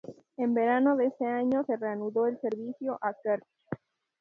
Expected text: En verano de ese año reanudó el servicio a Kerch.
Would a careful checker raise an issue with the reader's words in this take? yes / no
yes